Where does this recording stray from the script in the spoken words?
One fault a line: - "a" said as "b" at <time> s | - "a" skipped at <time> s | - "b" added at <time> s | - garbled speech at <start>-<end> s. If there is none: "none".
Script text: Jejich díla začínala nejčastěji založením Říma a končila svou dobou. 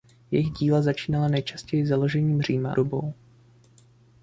- "a končila svou" skipped at 2.7 s